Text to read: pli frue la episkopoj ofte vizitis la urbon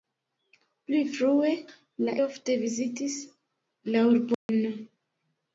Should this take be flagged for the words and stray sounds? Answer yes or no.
yes